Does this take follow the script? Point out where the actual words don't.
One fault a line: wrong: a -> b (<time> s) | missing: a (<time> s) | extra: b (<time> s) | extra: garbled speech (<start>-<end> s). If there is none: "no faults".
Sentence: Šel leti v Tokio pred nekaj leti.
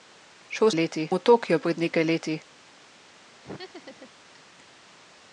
no faults